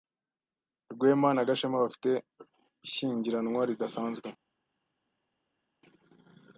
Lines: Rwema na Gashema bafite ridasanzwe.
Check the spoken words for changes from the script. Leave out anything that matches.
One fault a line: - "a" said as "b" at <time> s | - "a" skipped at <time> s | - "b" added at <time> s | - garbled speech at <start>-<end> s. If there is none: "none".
- "ishyingiranwa" added at 2.9 s